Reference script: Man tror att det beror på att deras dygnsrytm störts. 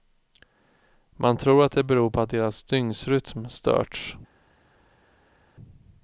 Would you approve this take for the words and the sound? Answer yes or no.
yes